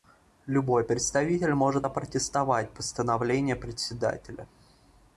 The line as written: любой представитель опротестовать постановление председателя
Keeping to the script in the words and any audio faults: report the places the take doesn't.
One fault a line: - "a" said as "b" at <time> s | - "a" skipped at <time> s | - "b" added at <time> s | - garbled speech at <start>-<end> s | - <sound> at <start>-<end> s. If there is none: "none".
- "может" added at 1.5 s